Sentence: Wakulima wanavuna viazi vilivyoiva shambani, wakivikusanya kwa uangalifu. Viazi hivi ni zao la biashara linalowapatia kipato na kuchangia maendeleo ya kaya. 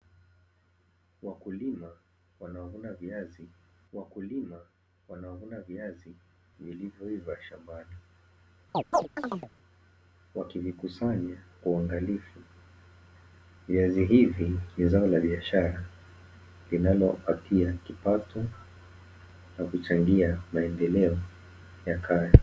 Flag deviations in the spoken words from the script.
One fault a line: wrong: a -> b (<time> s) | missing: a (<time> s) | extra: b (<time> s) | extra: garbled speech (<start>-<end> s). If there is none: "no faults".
extra: wakulima wanavuna viazi (3.9 s)